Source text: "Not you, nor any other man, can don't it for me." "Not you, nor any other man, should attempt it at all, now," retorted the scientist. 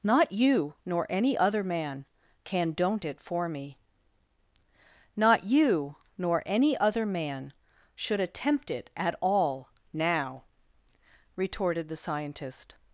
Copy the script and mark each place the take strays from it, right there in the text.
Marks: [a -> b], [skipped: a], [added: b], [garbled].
"Not you, nor any other man, can don't it for me." "Not you, nor any other man, should attempt it at all, now," retorted the scientist.